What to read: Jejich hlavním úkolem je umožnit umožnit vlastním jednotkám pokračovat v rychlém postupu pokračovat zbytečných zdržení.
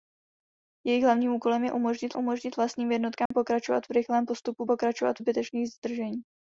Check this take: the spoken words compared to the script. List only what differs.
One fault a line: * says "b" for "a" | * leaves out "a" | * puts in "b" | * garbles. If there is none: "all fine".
all fine